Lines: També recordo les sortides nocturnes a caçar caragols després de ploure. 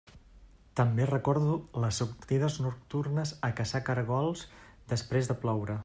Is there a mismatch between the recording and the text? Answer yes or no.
no